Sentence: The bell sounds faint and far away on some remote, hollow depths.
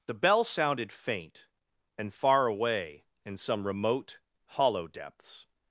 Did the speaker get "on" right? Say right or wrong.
wrong